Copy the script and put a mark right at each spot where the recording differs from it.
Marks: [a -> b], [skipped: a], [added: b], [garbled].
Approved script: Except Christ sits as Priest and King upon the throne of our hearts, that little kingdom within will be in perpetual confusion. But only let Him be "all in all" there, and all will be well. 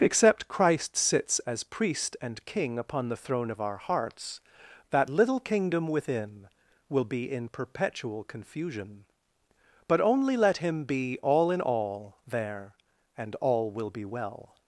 Except Christ sits as Priest and King upon the throne of our hearts, that little kingdom within will be in perpetual confusion. But only let Him be "all in all" there, and all will be well.